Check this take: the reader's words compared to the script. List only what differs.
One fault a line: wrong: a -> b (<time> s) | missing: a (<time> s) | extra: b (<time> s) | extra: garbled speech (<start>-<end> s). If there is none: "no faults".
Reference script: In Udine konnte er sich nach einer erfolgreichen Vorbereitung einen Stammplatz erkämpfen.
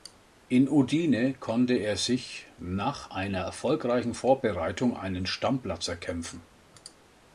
no faults